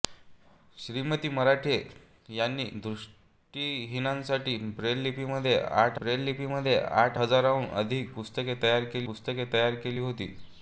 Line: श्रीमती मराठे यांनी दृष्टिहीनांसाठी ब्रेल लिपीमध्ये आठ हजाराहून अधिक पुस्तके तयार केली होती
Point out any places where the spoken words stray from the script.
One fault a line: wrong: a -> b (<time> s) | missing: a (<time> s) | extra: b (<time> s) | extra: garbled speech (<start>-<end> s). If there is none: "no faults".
extra: ब्रेल लिपीमध्ये आठ (6.0 s)
extra: पुस्तके तयार केली (9.0 s)